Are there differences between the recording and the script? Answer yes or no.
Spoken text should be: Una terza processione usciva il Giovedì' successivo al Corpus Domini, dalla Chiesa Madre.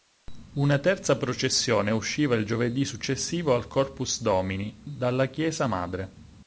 no